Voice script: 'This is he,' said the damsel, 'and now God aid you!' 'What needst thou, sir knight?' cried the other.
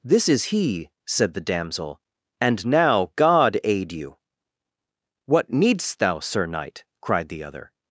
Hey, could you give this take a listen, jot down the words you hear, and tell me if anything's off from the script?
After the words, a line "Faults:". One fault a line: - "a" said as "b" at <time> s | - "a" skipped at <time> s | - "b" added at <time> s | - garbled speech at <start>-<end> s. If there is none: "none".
'This is he,' said the damsel, 'and now God aid you!' 'What needst thou, sir knight?' cried the other.
Faults:
none